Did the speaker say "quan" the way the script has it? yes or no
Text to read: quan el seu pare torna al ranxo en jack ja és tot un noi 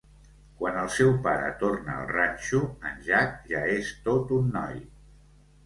yes